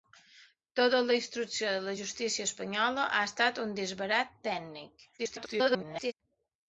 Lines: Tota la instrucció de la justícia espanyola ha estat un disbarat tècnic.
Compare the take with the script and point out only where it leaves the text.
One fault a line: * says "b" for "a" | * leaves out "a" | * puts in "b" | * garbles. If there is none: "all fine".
* garbles